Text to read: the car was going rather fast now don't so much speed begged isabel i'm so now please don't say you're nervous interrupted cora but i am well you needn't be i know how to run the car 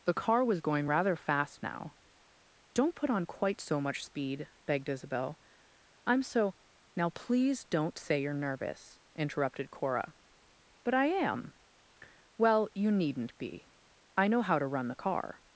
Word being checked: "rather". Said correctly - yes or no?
yes